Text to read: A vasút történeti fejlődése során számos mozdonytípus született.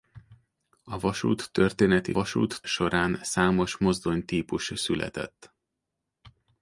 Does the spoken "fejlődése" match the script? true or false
false